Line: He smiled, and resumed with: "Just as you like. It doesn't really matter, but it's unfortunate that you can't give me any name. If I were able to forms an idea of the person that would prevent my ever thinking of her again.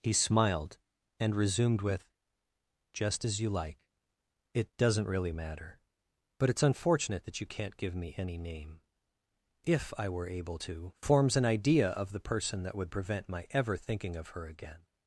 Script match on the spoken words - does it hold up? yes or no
yes